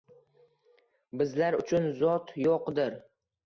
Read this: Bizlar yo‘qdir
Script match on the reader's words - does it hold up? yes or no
no